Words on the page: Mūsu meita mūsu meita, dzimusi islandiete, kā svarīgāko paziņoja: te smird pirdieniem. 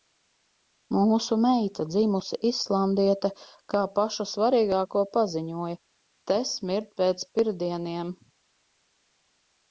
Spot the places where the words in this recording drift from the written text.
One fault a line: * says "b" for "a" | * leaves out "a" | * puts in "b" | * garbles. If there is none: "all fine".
* leaves out "mūsu meita"
* puts in "pašu"
* puts in "pēc"